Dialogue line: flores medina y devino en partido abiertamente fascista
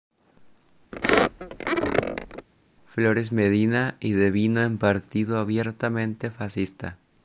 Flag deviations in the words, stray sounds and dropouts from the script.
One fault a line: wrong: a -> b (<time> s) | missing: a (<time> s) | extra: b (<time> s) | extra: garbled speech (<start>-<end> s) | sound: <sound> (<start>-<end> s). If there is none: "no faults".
sound: squeak (0.9-2.5 s)